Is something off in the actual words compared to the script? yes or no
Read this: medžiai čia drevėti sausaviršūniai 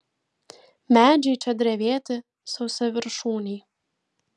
no